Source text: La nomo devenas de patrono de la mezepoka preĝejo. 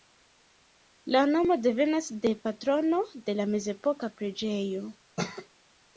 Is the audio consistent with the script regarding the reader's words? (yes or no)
yes